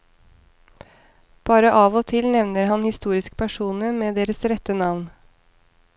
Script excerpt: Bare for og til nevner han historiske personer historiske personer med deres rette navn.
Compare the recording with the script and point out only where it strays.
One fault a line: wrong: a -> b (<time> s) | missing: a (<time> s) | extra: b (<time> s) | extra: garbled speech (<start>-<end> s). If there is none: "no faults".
wrong: for -> av (1.8 s)
missing: historiske personer (3.9 s)